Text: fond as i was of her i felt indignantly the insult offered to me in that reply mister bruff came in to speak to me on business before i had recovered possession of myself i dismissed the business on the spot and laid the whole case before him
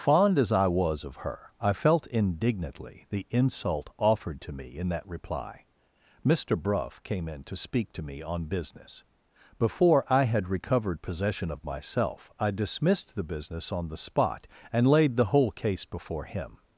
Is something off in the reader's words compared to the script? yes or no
no